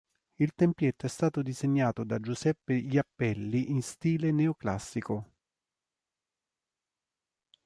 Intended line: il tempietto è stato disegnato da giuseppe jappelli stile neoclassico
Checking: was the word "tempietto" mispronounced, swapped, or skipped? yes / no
no